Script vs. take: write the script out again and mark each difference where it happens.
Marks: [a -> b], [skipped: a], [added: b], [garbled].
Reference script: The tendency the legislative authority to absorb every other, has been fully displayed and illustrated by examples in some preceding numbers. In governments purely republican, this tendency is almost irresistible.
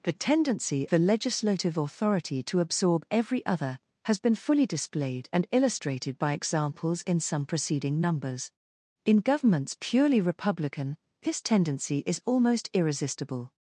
The tendency the legislative authority to absorb every other, has been fully displayed and illustrated by examples in some preceding numbers. In governments purely republican, this tendency is almost irresistible.